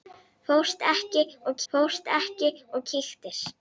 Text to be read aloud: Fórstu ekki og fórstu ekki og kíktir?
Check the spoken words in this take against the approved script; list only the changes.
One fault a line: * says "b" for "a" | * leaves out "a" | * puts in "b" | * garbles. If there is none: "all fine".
all fine